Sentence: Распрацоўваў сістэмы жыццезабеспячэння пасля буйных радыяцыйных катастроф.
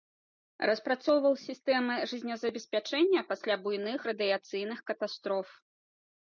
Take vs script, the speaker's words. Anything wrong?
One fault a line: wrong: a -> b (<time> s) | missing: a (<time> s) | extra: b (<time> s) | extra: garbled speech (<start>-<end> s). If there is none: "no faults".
no faults